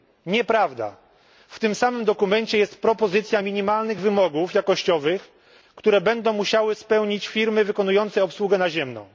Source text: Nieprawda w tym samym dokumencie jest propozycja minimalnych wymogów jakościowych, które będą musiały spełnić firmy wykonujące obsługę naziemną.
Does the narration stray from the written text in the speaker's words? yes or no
no